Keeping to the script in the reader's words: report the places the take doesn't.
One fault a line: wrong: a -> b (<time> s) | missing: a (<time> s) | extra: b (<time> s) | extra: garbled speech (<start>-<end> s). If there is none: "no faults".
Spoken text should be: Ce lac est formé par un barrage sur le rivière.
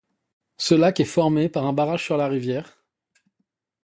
wrong: le -> la (2.2 s)